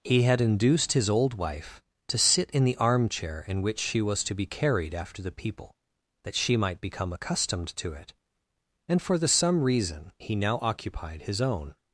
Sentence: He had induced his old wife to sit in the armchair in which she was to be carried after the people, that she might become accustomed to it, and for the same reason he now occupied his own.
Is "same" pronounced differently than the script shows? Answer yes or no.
yes